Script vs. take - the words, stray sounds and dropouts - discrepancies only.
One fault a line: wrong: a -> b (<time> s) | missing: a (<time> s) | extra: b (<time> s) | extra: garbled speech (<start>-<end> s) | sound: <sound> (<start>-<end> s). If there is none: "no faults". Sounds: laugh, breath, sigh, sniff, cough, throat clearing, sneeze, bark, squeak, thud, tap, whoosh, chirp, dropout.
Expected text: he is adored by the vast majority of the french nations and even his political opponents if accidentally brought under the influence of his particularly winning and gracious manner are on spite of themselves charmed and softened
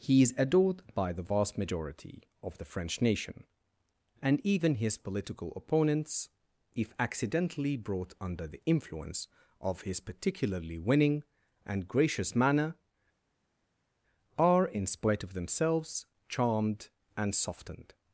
wrong: nations -> nation (3.0 s)
wrong: on -> in (14.7 s)